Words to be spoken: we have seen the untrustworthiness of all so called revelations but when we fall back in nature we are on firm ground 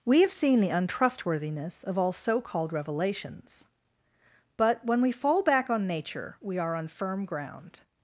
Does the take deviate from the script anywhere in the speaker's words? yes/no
yes